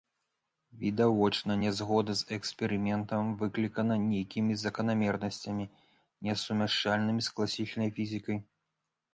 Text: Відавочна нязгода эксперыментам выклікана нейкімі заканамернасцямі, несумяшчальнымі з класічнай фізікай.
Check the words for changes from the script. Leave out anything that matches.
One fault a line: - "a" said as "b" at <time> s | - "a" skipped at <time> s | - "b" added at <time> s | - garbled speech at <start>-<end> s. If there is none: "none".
- "з" added at 2.2 s